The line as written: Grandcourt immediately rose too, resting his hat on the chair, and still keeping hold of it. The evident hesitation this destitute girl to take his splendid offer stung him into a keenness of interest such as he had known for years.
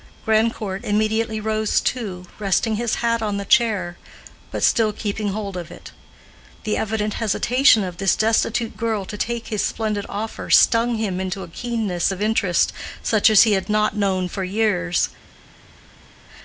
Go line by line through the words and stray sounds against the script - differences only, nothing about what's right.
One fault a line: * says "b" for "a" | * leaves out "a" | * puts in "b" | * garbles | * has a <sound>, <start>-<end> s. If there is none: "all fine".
* says "but" for "and"
* puts in "of"
* puts in "not"